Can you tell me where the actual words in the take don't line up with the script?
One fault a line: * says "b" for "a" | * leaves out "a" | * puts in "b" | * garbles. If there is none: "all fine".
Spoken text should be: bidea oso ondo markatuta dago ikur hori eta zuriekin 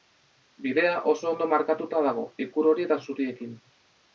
all fine